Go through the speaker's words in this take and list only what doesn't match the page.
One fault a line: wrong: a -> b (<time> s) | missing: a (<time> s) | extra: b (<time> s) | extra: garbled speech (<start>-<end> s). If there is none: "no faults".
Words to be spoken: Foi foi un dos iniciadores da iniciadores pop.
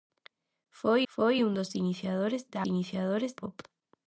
no faults